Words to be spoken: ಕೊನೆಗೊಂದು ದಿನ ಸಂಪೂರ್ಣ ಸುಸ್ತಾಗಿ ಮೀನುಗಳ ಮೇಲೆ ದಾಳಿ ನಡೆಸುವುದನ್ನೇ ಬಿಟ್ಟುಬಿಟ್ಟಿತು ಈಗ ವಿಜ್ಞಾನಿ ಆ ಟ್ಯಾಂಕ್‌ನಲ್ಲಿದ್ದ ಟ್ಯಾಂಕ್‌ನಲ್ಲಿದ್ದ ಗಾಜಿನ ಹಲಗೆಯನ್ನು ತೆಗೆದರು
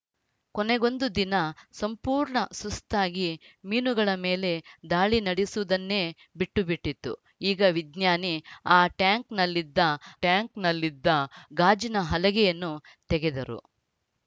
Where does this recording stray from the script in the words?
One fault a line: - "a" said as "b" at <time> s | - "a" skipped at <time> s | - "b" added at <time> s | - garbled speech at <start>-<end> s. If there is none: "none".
none